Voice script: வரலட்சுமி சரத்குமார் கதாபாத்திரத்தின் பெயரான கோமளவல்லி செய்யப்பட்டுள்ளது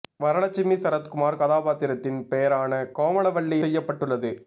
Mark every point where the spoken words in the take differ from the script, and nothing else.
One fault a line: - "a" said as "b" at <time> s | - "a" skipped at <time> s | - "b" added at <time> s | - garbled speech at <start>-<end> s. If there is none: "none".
none